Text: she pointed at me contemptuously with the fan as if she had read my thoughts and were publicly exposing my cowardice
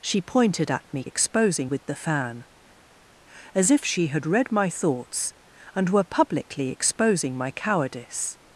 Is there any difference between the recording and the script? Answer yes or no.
yes